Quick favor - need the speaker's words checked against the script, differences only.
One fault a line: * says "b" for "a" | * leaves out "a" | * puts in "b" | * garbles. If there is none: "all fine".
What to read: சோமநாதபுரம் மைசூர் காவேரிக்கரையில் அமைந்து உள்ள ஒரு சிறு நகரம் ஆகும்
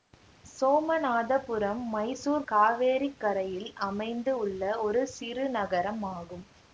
all fine